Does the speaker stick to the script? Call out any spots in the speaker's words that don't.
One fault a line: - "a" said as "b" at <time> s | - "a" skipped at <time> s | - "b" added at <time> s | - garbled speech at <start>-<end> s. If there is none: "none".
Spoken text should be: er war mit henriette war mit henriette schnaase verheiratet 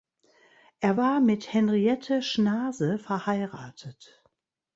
- "war mit henriette" skipped at 2.2 s